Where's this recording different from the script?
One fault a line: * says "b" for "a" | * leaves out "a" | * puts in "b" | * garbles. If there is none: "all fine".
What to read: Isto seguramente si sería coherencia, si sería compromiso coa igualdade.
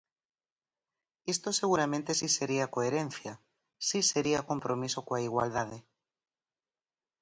all fine